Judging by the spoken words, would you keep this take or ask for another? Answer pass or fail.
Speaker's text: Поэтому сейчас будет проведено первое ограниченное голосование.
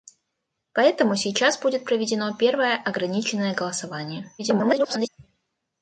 fail